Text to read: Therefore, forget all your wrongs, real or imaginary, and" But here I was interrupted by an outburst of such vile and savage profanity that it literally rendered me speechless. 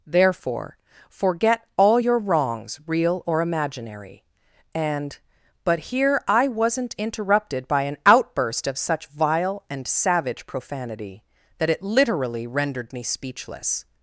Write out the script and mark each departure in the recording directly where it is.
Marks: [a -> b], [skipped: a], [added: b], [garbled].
Therefore, forget all your wrongs, real or imaginary, and" But here I [was -> wasn't] interrupted by an outburst of such vile and savage profanity that it literally rendered me speechless.